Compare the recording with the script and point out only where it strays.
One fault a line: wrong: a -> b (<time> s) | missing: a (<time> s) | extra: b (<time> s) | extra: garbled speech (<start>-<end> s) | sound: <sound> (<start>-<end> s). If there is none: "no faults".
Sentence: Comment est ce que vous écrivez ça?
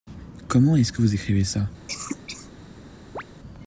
sound: cough (1.9-2.5 s)
sound: chirp (3.2-3.2 s)